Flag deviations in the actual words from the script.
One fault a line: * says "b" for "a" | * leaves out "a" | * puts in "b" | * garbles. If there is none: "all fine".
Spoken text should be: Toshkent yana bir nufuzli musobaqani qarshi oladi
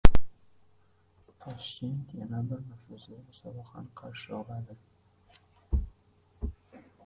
all fine